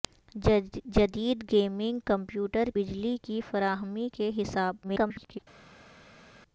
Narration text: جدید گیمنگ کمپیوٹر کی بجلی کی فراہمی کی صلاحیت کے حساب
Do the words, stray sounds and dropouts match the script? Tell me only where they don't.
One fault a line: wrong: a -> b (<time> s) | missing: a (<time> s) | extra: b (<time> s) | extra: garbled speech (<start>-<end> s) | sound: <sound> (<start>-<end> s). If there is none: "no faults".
missing: کی (2.7 s)
missing: کی صلاحیت (4.1 s)
extra: garbled speech (4.8-5.4 s)